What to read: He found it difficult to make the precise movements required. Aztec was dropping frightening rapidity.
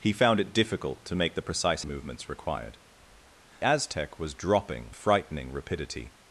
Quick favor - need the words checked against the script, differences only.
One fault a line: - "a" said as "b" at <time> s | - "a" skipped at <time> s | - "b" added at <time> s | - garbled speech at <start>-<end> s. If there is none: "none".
none